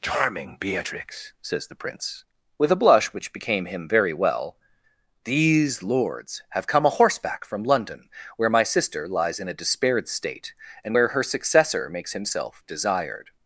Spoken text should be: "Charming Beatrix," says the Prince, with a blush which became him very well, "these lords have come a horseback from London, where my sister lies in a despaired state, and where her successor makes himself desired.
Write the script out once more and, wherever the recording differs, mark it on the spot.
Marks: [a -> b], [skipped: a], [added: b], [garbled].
"Charming Beatrix," says the Prince, with a blush which became him very well, "these lords have come a horseback from London, where my sister lies in a despaired state, and where her successor makes himself desired.